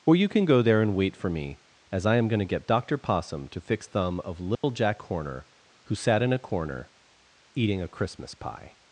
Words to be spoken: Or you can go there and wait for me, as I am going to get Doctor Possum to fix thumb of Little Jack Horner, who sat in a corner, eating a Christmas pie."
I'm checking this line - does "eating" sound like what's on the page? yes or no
yes